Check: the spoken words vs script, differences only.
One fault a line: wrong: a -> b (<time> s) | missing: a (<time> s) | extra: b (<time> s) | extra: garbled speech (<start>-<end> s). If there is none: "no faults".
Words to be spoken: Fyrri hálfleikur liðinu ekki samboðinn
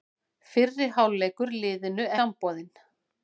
missing: ekki (2.1 s)